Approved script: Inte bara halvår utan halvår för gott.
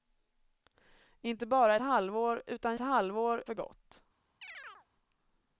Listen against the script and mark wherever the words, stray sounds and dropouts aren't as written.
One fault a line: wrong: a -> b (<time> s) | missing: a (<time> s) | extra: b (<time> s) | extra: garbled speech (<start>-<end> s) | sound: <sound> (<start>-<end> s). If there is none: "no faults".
sound: chirp (4.4-4.9 s)